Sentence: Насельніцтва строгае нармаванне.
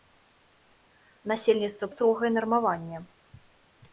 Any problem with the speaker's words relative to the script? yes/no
no